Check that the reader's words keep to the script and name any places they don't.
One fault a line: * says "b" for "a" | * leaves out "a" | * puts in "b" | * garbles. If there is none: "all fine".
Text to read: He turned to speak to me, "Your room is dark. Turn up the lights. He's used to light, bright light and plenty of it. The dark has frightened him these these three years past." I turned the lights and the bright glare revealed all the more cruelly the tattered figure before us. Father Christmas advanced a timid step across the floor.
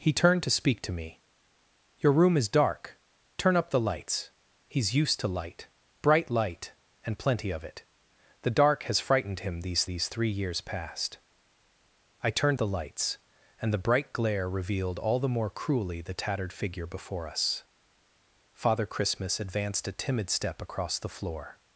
all fine